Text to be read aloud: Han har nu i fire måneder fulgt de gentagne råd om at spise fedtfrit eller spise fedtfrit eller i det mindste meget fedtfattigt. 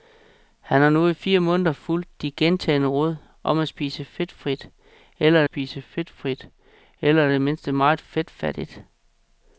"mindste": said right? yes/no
yes